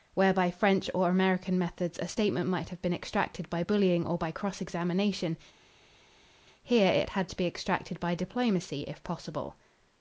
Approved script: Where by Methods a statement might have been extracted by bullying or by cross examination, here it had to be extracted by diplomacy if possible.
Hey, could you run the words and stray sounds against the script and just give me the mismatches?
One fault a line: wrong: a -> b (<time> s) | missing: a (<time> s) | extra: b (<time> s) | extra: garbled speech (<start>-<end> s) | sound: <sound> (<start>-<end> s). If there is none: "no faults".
extra: French or American (0.5 s)